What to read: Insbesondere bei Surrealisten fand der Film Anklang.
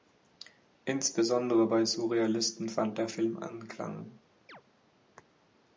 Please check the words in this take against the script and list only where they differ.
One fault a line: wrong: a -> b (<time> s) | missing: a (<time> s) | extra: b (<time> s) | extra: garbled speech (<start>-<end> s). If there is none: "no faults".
no faults